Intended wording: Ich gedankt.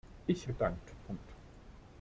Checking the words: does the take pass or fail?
pass